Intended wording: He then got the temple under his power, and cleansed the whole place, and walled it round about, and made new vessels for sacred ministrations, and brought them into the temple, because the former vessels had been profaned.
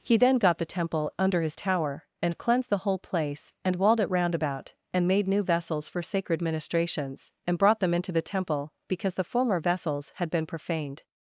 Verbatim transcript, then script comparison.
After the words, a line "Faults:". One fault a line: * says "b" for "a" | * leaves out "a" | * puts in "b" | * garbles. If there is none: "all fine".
He then got the temple under his tower, and cleansed the whole place, and walled it round about, and made new vessels for sacred ministrations, and brought them into the temple, because the former vessels had been profaned.
Faults:
* says "tower" for "power"